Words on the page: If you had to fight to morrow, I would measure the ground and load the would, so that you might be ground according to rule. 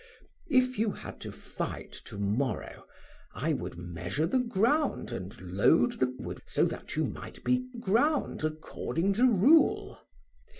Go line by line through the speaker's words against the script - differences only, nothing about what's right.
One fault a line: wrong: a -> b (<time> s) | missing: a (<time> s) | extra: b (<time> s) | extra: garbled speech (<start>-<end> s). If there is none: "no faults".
no faults